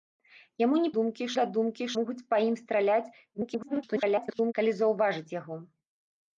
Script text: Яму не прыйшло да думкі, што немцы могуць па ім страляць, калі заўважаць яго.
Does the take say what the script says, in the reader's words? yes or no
no